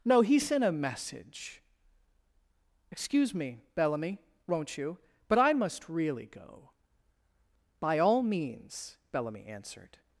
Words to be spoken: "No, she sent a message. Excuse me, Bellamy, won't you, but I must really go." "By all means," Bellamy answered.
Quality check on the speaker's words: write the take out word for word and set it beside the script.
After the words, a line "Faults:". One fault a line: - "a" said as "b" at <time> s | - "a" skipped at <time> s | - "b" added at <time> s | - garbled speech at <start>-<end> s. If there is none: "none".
"No, he sent a message. Excuse me, Bellamy, won't you, but I must really go." "By all means," Bellamy answered.
Faults:
- "she" said as "he" at 0.2 s